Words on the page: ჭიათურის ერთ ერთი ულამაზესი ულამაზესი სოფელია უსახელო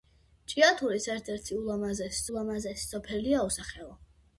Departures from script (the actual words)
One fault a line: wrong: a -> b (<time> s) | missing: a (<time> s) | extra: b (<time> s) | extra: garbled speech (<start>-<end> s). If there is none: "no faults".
no faults